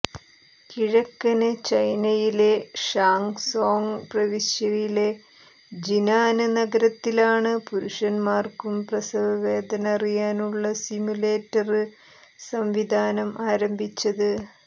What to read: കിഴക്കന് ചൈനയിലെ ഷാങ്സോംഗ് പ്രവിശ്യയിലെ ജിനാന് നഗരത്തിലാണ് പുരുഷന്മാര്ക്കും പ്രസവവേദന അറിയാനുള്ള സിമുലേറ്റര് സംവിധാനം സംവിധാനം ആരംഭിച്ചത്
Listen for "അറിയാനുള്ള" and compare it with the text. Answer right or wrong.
right